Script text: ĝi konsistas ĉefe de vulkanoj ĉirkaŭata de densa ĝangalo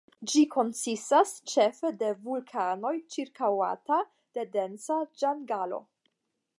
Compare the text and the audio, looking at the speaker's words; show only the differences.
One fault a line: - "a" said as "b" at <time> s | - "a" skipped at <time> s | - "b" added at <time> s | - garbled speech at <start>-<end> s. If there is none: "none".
none